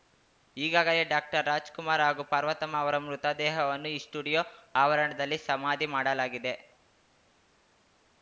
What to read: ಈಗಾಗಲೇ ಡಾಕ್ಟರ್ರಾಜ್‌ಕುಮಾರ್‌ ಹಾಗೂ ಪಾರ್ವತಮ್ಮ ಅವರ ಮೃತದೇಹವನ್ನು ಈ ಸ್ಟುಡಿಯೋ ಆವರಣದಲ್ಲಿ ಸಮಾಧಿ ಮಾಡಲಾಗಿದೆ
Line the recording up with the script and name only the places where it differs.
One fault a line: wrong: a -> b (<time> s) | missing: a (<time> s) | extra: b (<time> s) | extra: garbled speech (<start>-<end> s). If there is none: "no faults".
no faults